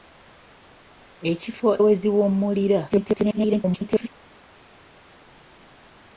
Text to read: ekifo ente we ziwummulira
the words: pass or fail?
fail